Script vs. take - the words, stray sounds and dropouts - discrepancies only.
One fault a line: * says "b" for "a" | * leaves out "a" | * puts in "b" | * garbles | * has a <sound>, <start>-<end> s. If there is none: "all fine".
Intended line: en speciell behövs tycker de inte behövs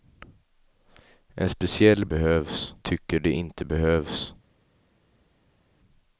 all fine